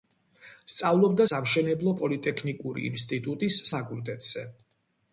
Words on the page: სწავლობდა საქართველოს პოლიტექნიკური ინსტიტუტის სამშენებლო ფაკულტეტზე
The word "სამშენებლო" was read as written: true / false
false